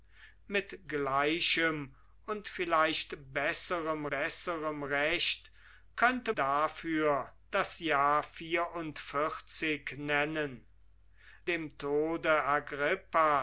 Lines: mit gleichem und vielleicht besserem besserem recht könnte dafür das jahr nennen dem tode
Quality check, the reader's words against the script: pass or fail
pass